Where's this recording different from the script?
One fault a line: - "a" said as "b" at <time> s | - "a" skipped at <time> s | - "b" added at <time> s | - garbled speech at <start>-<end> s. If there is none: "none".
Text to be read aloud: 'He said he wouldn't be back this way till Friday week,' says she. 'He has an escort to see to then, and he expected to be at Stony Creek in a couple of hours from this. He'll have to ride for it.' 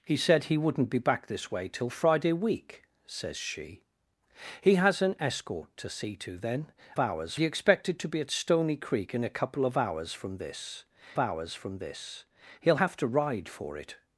- "and" said as "hours" at 7.0 s
- "hours from this" added at 11.2 s